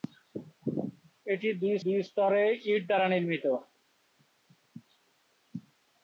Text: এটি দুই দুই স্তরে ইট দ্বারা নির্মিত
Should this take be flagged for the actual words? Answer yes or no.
no